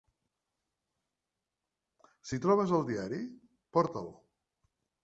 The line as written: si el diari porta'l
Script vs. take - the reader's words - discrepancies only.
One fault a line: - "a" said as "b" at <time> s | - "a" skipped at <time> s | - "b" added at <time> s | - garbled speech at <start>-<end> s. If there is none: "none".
- "trobes" added at 2.5 s